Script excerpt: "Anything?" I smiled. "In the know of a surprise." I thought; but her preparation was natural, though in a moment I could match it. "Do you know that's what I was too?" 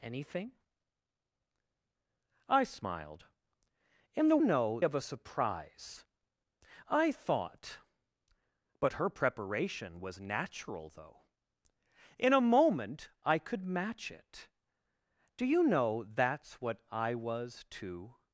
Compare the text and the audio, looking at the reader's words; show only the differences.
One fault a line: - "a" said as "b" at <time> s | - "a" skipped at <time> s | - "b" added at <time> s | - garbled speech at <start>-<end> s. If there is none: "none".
none